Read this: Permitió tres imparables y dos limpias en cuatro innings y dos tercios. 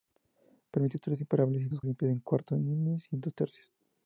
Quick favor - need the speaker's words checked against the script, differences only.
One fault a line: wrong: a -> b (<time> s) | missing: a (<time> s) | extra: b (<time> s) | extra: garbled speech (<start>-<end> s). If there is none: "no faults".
no faults